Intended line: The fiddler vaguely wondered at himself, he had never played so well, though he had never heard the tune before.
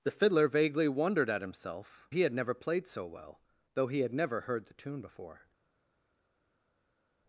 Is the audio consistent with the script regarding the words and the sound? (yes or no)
yes